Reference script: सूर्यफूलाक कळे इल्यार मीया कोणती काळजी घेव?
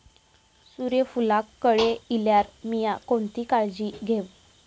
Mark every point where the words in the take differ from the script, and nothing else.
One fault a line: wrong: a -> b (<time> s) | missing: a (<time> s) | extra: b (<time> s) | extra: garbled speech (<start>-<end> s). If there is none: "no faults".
no faults